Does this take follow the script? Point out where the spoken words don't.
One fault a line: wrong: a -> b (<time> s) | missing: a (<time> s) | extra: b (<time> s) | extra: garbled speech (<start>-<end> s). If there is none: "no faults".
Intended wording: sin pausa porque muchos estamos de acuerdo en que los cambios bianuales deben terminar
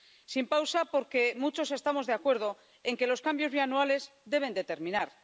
no faults